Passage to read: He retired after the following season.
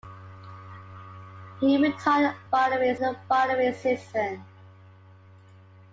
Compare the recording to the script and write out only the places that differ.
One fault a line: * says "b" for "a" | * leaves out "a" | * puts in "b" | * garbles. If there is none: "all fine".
* says "following" for "after"